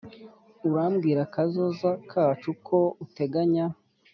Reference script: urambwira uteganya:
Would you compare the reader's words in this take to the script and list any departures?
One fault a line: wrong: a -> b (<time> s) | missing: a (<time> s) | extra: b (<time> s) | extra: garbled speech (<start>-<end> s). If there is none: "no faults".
extra: kazoza kacu ko (1.3 s)